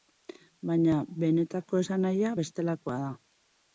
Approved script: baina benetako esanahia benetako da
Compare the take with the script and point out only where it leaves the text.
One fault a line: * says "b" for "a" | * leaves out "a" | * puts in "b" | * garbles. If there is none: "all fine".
* says "bestelakoa" for "benetako"